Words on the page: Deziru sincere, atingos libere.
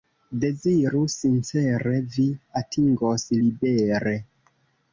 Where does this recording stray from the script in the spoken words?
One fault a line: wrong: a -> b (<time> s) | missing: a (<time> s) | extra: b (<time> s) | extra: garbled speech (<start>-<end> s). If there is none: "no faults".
extra: vi (2.2 s)